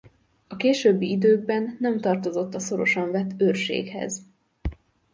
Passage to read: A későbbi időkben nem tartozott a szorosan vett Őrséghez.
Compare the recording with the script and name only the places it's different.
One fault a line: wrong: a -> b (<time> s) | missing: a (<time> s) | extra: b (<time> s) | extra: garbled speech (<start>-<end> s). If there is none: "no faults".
no faults